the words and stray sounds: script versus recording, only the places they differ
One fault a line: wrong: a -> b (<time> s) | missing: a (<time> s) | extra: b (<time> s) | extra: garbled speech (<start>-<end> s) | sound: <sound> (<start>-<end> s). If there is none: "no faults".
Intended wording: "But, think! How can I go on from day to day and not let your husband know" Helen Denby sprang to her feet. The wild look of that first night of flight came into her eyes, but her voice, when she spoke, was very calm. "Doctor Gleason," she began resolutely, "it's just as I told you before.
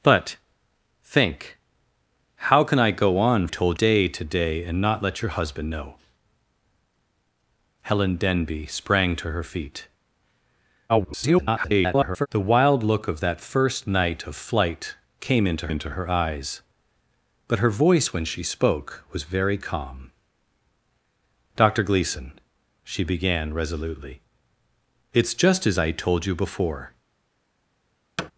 wrong: from -> told (3.5 s)
extra: garbled speech (10.9-12.3 s)
extra: into (15.7 s)
sound: thud (28.2-28.3 s)